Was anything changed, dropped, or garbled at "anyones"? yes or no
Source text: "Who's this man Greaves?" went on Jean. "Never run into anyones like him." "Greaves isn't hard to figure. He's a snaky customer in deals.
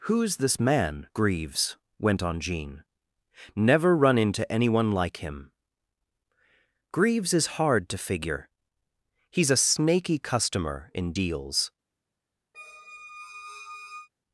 yes